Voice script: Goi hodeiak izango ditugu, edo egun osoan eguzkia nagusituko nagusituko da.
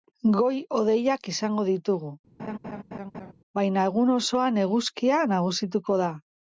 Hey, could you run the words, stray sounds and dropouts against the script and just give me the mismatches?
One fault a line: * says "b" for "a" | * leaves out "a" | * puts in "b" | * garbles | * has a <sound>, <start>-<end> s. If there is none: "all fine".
* has a laugh, 2.4-3.3 s
* says "baina" for "edo"
* leaves out "nagusituko"